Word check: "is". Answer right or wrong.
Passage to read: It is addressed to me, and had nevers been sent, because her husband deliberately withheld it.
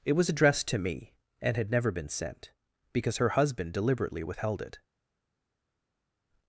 wrong